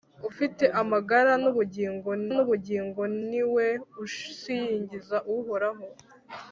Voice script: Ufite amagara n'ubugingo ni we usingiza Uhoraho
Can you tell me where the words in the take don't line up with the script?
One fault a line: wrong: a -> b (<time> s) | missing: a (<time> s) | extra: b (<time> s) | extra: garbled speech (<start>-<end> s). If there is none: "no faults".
extra: n'ubugingo (2.3 s)